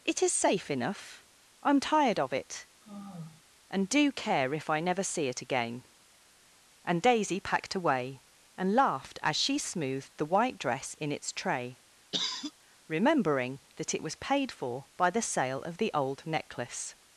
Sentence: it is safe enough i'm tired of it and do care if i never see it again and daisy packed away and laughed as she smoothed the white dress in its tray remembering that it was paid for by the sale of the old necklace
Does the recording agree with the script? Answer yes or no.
yes